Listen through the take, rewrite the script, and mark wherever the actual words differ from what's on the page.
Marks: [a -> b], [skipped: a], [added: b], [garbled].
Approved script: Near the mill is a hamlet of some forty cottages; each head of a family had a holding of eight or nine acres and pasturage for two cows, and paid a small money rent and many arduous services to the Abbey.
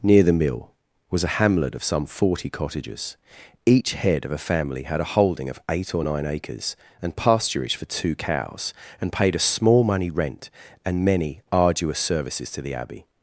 Near the mill [is -> was] a hamlet of some forty cottages; each head of a family had a holding of eight or nine acres and pasturage for two cows, and paid a small money rent and many arduous services to the Abbey.